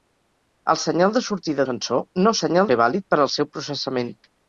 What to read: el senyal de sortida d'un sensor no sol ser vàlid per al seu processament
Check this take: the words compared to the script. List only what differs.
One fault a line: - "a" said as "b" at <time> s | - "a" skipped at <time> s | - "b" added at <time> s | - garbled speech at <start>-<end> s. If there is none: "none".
- "d'un" skipped at 1.6 s
- "sol" said as "senyal" at 2.4 s